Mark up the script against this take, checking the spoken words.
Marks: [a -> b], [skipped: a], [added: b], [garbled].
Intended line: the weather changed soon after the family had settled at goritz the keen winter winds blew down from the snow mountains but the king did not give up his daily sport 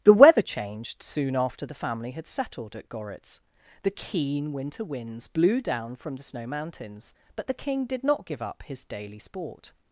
the weather changed soon after the family had settled at goritz the keen winter winds blew down from the snow mountains but the king did not give up his daily sport